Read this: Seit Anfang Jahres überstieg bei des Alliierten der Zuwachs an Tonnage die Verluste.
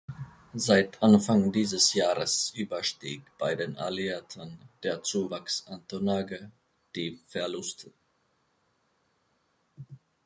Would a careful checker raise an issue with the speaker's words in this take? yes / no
yes